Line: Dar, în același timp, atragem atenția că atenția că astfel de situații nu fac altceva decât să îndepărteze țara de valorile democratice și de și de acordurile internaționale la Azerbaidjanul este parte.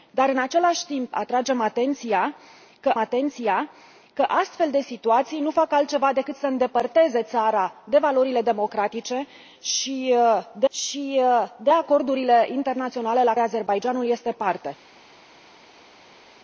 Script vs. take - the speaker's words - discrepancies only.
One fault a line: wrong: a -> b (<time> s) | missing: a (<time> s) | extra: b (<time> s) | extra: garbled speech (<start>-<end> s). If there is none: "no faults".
no faults